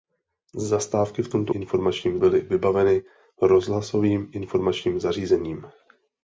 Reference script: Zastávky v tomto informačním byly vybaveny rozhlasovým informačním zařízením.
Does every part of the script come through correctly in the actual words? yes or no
yes